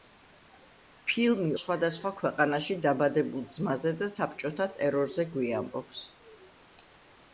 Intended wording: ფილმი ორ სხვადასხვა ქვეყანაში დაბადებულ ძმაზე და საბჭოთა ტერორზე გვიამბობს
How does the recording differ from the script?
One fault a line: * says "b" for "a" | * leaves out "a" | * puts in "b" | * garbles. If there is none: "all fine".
* leaves out "ორ"